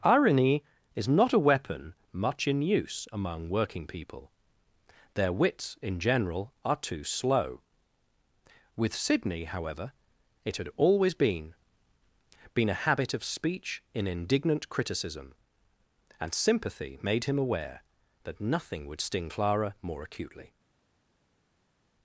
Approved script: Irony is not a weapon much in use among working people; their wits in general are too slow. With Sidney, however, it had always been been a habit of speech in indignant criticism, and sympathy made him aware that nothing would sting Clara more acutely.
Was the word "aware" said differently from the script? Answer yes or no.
no